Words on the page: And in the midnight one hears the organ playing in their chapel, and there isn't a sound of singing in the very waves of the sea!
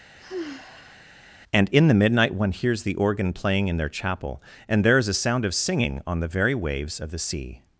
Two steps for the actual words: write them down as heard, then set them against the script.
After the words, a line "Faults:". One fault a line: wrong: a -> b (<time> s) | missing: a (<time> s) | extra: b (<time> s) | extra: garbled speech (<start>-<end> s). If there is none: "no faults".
And in the midnight one hears the organ playing in their chapel, and there is a sound of singing on the very waves of the sea!
Faults:
wrong: isn't -> is (5.0 s)
wrong: in -> on (6.1 s)